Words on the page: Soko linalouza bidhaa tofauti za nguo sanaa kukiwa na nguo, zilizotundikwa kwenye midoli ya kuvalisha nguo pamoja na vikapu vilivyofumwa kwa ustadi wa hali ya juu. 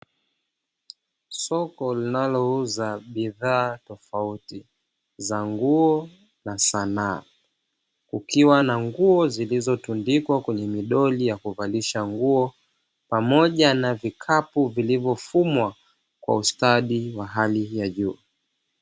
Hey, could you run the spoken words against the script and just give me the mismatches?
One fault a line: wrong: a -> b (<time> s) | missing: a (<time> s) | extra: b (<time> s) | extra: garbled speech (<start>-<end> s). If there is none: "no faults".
extra: na (6.5 s)